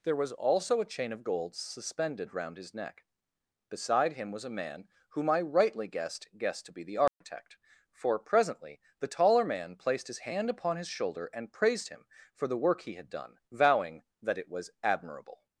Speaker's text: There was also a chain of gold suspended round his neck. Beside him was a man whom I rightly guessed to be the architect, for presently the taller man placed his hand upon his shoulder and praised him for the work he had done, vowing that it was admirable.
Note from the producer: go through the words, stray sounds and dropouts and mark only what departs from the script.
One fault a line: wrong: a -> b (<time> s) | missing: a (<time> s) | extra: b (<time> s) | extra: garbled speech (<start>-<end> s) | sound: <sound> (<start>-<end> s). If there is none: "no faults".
extra: guessed (6.4 s)
sound: dropout (7.1-7.2 s)